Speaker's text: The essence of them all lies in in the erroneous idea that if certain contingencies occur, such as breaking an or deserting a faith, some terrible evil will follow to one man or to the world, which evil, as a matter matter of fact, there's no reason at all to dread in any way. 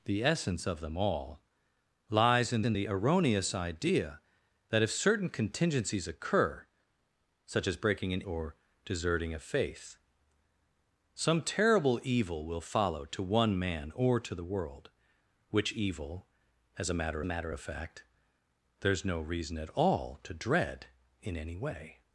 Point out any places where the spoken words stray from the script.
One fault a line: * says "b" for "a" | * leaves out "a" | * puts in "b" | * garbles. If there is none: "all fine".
all fine